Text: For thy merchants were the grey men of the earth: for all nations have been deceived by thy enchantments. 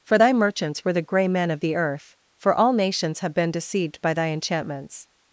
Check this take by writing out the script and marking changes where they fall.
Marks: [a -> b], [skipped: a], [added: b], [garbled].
For thy merchants were the grey men of the earth: for all nations have been deceived by thy enchantments.